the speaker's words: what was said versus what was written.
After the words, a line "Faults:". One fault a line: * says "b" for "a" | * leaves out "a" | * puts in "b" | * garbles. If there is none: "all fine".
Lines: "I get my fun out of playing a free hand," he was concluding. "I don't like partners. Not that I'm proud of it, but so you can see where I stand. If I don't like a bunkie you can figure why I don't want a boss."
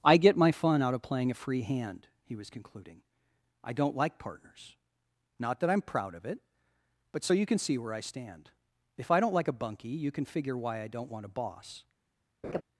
"I get my fun out of playing a free hand," he was concluding. "I don't like partners. Not that I'm proud of it, but so you can see where I stand. If I don't like a bunkie you can figure why I don't want a boss."
Faults:
all fine